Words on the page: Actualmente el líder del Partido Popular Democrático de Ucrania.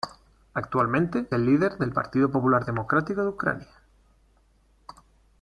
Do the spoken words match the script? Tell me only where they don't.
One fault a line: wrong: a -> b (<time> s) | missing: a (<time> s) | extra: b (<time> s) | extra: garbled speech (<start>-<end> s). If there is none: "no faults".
no faults